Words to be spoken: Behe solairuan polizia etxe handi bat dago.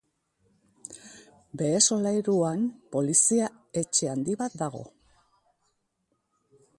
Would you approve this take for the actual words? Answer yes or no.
yes